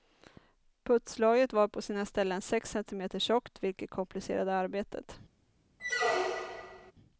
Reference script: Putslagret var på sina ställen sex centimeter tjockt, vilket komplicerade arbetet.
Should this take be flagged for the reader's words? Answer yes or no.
no